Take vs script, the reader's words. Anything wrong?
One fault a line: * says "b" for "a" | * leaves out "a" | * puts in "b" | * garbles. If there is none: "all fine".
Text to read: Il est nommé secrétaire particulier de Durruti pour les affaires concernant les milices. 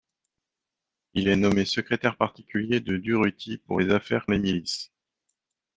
* leaves out "concernant"